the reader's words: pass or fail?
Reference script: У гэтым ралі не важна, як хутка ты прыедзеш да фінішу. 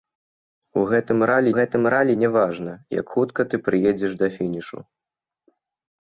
fail